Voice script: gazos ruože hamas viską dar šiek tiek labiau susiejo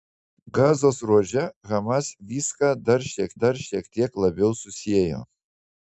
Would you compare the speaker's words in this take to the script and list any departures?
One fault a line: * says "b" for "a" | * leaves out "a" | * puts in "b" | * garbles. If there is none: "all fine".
* puts in "dar šiek"